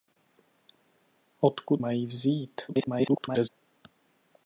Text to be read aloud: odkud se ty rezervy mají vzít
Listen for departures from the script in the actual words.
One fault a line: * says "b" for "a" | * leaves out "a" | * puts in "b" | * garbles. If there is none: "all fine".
* leaves out "se ty rezervy"
* garbles